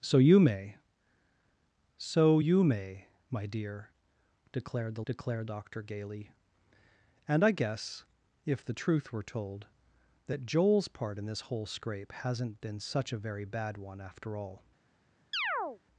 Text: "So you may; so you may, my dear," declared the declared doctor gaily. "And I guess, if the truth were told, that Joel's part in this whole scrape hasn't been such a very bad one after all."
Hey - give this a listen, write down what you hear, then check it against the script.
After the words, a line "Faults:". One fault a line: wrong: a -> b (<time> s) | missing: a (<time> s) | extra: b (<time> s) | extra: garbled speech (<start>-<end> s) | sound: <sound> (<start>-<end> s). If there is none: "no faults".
"So you may; so you may, my dear," declared the declared doctor gaily. "And I guess, if the truth were told, that Joel's part in this whole scrape hasn't been such a very bad one after all."
Faults:
sound: chirp (15.3-15.8 s)